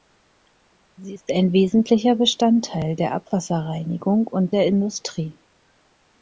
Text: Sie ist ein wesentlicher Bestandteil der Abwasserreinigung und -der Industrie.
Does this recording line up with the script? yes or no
yes